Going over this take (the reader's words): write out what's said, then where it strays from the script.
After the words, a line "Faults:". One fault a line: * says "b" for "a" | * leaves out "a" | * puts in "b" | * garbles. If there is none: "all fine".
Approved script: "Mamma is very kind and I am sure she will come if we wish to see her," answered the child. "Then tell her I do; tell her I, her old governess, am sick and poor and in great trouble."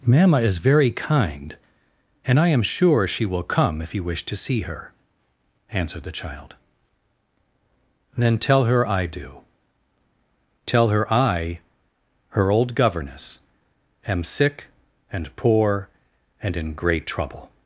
"Mamma is very kind and I am sure she will come if you wish to see her," answered the child. "Then tell her I do; tell her I, her old governess, am sick and poor and in great trouble."
Faults:
* says "you" for "we"